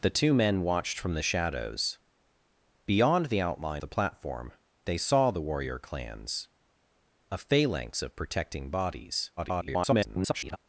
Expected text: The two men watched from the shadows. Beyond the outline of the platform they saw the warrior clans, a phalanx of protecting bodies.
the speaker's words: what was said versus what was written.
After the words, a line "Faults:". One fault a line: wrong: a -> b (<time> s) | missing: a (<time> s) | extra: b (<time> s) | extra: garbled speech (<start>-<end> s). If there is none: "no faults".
The two men watched from the shadows. Beyond the outline the platform they saw the warrior clans, a phalanx of protecting bodies. [garbled]
Faults:
missing: of (3.8 s)
extra: garbled speech (9.4-10.6 s)